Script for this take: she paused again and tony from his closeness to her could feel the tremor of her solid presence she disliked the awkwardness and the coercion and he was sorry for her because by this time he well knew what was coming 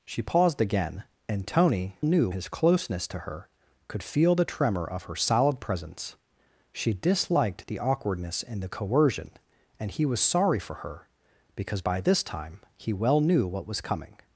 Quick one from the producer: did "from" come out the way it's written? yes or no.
no